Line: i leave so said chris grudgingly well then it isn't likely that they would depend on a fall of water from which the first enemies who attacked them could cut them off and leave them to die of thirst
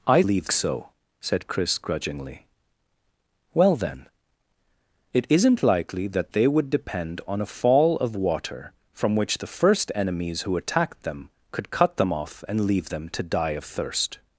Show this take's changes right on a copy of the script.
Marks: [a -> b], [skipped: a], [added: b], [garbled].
i leave so said chris grudgingly well then it isn't likely that they would depend on a fall of water from which the first enemies who attacked them could cut them off and leave them to die of thirst